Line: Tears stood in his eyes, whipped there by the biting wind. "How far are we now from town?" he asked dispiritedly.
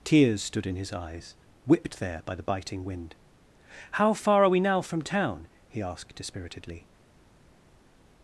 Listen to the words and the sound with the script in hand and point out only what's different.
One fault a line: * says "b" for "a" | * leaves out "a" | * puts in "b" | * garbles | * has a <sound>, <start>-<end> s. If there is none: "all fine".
all fine